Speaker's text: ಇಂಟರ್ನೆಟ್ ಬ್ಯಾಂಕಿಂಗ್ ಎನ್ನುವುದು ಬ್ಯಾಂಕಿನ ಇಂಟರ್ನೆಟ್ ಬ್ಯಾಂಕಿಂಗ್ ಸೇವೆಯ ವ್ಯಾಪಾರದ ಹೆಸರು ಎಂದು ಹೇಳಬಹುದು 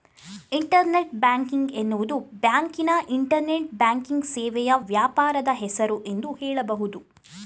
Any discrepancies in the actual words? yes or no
no